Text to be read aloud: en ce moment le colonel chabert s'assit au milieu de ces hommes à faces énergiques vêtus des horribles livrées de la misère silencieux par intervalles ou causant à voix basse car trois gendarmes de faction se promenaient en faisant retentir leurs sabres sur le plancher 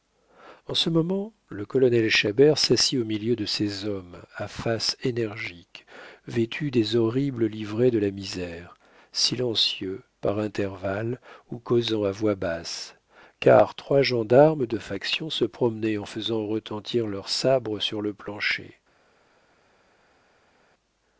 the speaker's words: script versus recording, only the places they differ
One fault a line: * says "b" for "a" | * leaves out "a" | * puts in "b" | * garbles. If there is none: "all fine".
all fine